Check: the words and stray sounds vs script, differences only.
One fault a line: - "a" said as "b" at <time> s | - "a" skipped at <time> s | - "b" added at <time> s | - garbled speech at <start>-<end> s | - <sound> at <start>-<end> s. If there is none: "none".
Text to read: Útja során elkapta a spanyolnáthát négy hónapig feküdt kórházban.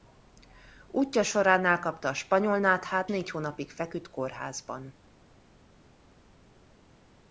none